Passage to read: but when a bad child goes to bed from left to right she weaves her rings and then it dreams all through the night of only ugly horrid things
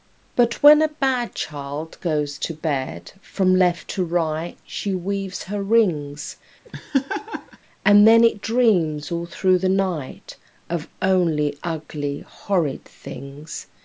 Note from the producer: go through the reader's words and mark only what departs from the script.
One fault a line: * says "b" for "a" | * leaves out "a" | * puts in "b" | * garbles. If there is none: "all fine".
all fine